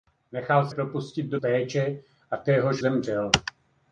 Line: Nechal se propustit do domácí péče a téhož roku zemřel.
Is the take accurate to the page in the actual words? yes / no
no